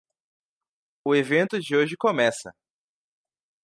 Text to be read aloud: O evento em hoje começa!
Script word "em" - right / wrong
wrong